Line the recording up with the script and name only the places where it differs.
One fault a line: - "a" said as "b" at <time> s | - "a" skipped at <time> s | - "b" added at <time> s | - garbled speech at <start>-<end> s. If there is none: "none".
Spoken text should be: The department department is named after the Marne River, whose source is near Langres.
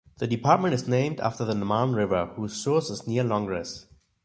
- "department" skipped at 0.7 s